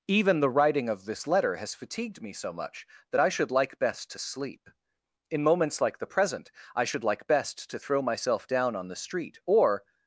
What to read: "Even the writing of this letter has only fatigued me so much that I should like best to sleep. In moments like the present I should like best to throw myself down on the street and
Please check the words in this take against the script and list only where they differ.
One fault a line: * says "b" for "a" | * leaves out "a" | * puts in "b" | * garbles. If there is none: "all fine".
* leaves out "only"
* says "or" for "and"